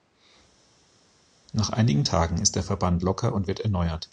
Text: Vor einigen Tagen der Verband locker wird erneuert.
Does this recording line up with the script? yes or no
no